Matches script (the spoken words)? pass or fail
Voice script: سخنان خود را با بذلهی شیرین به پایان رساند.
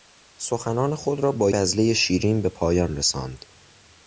pass